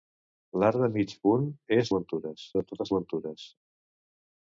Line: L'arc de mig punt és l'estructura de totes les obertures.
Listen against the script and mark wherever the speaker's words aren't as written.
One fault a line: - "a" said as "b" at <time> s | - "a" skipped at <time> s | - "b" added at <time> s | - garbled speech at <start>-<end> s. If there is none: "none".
- "l'estructura" said as "obertures" at 1.9 s
- "les" skipped at 2.9 s